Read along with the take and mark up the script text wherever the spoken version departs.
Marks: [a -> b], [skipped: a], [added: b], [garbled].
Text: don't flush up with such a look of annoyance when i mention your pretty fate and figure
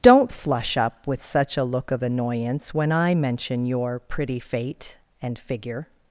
don't flush up with such a look of annoyance when i mention your pretty fate and figure